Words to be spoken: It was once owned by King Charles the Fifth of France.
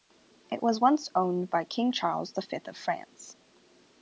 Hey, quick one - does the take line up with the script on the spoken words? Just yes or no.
yes